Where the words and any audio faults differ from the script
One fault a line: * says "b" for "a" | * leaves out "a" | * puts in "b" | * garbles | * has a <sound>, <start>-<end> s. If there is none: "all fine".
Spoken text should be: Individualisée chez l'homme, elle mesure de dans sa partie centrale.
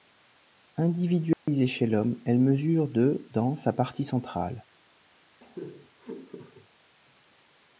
* has a dropout, 1.3-1.5 s
* has a laugh, 5.4-6.7 s